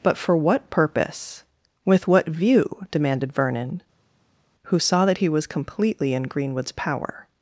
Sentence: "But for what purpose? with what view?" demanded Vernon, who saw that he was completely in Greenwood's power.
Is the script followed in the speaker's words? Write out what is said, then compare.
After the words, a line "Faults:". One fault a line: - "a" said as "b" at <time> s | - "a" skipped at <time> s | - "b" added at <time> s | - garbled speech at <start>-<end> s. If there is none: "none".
"But for what purpose? with what view?" demanded Vernon, who saw that he was completely in Greenwood's power.
Faults:
none